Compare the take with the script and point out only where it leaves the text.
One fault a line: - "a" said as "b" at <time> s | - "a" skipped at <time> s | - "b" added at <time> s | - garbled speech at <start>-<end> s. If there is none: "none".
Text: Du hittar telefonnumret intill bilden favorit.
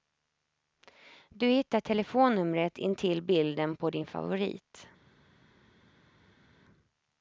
- "på din" added at 3.8 s